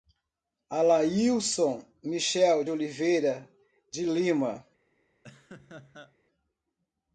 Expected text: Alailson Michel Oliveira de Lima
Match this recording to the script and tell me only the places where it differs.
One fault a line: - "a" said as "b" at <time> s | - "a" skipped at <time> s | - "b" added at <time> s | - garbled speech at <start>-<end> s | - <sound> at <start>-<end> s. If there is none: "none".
- laugh at 5.2-6.2 s